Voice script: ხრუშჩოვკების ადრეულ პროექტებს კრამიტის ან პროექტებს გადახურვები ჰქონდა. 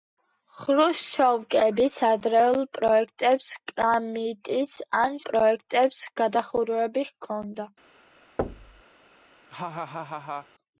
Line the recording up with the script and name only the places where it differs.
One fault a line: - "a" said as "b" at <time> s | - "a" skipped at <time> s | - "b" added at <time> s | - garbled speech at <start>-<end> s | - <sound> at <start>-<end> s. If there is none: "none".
- thud at 8.4-8.8 s
- laugh at 9.5-10.5 s